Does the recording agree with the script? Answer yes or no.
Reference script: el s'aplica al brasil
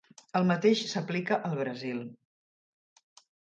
no